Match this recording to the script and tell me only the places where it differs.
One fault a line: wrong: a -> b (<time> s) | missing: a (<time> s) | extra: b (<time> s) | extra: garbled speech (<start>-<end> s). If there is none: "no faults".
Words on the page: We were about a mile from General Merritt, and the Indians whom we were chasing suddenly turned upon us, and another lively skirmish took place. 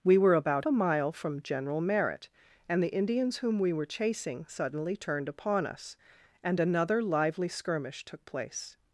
no faults